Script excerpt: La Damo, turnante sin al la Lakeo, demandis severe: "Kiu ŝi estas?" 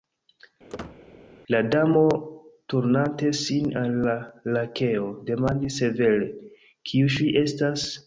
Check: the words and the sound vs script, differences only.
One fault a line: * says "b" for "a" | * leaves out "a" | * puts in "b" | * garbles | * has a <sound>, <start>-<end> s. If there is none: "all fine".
* has a squeak, 0.7-1.0 s